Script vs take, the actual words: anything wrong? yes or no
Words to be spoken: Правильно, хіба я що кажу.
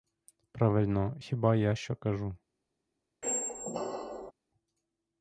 no